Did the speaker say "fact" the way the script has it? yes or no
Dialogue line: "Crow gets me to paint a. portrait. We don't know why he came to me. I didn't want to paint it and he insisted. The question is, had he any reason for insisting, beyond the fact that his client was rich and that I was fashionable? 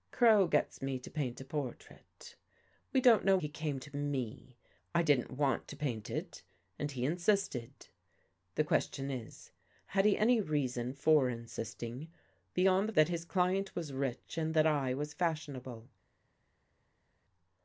no